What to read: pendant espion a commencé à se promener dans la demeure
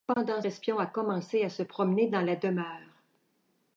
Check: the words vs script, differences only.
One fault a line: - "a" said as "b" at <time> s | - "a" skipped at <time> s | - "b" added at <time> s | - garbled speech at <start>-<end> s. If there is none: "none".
none